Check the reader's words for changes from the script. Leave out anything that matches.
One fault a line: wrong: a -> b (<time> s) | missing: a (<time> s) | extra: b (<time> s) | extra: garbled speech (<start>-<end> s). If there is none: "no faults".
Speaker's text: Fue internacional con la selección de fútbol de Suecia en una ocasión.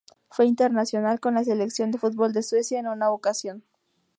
no faults